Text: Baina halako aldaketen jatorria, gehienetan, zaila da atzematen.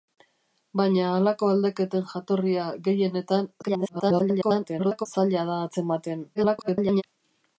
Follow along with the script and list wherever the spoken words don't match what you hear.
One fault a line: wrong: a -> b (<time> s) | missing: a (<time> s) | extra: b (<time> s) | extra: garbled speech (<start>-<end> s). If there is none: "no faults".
extra: garbled speech (3.6-5.1 s)
extra: garbled speech (6.3-7.0 s)